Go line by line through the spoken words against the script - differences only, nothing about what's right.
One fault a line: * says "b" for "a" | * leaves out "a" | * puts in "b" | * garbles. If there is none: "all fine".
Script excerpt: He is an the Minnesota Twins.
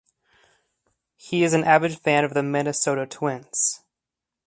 * puts in "avid fan of"